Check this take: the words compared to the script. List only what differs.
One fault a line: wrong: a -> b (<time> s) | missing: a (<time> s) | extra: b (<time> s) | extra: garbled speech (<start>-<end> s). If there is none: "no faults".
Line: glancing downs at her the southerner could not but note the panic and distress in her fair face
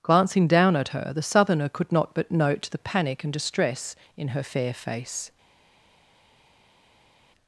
wrong: downs -> down (0.5 s)